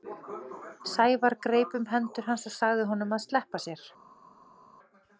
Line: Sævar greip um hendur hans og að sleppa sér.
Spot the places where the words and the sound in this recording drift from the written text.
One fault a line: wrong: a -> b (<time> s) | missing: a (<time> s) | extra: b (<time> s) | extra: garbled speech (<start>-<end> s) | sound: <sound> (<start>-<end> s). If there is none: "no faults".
extra: sagði honum (2.6 s)